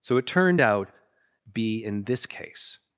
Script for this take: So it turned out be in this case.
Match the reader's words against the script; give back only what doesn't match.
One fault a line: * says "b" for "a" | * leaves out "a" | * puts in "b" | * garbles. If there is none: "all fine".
all fine